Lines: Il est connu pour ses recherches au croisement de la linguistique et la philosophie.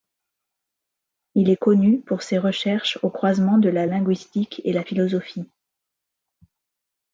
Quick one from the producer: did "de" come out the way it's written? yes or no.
yes